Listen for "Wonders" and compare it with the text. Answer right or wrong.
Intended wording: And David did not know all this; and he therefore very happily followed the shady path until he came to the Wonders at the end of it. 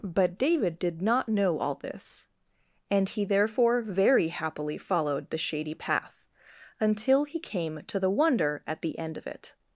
wrong